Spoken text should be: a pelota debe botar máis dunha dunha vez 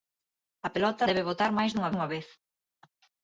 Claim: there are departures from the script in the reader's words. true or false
false